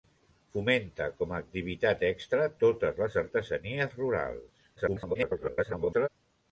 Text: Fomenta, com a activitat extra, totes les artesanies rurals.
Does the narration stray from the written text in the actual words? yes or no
yes